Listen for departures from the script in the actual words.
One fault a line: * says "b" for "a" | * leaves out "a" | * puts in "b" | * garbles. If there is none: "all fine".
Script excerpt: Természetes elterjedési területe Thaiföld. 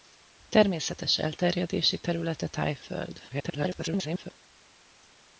* garbles